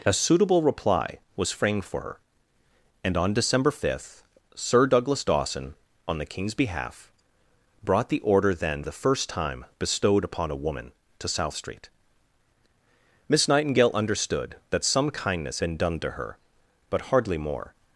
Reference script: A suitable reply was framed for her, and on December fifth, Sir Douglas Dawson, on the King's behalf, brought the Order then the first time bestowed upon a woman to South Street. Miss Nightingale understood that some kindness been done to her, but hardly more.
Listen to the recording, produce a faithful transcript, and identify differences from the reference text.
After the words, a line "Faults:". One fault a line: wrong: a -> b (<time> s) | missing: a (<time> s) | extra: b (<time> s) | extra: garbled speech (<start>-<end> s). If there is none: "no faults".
A suitable reply was framed for her, and on December fifth, Sir Douglas Dawson, on the King's behalf, brought the Order then the first time bestowed upon a woman to South Street. Miss Nightingale understood that some kindness been done to her, but hardly more.
Faults:
no faults